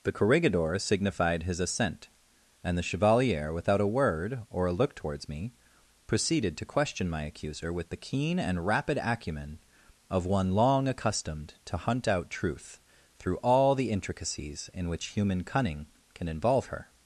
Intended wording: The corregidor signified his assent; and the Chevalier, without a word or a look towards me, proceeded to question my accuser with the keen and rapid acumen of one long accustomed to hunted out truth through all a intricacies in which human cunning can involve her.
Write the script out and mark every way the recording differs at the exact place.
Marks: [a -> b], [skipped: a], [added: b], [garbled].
The corregidor signified his assent; and the Chevalier, without a word or a look towards me, proceeded to question my accuser with the keen and rapid acumen of one long accustomed to [hunted -> hunt] out truth through all [a -> the] intricacies in which human cunning can involve her.